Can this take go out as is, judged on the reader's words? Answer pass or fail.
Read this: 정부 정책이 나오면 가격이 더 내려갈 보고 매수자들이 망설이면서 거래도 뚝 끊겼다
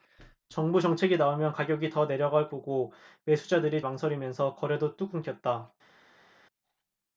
pass